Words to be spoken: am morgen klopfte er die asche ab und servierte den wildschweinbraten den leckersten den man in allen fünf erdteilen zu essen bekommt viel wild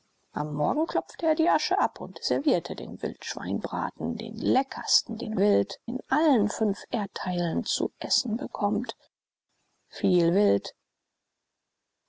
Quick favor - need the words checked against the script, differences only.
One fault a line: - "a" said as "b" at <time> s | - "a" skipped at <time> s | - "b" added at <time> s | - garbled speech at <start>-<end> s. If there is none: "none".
- "man" said as "wild" at 5.4 s